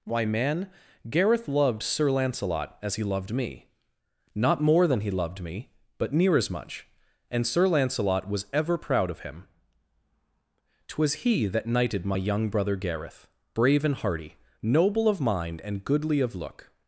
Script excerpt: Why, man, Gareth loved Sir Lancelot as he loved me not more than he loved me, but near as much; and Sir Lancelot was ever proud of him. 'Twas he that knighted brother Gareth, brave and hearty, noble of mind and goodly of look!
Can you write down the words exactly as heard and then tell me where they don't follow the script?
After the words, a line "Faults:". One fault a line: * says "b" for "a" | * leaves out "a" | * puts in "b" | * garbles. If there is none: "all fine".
Why, man, Gareth loved Sir Lancelot as he loved me not more than he loved me, but near as much; and Sir Lancelot was ever proud of him. 'Twas he that knighted my young brother Gareth, brave and hearty, noble of mind and goodly of look!
Faults:
* puts in "my young"